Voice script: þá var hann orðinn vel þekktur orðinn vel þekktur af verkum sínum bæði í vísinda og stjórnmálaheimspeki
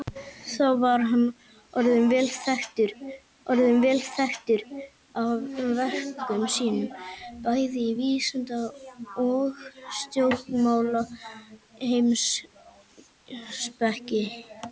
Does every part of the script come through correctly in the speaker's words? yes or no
yes